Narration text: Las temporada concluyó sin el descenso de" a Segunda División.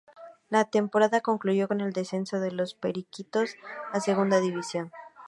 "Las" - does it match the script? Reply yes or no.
no